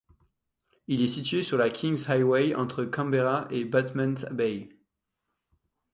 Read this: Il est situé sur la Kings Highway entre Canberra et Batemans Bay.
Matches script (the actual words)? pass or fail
pass